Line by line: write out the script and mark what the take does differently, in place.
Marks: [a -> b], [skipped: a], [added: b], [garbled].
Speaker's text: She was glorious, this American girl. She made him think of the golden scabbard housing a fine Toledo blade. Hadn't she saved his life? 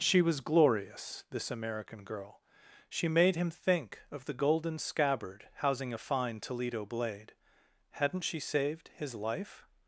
She was glorious, this American girl. She made him think of the golden scabbard housing a fine Toledo blade. Hadn't she saved his life?